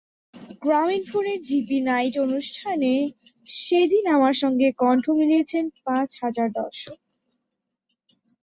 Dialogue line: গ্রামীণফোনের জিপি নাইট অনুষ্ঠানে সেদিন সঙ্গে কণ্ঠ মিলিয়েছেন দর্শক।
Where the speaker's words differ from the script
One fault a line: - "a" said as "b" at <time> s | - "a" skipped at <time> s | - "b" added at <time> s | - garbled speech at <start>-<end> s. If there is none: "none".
- "আমার" added at 4.1 s
- "পাঁচ হাজার" added at 5.8 s